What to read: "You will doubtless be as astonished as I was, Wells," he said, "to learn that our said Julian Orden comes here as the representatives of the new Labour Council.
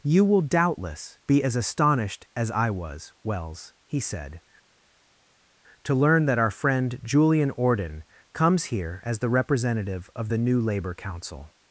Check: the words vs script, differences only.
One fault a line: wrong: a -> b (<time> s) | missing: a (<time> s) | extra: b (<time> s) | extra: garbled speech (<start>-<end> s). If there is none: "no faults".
wrong: said -> friend (6.5 s)
wrong: representatives -> representative (9.3 s)